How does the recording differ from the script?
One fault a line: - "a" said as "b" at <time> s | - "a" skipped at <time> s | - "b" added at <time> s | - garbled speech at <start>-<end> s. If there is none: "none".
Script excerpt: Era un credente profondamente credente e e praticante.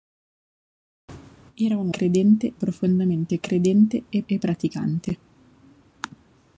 none